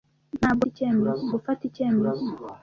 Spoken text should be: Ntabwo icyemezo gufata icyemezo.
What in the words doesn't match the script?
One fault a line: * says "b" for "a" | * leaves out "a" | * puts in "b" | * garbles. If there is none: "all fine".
all fine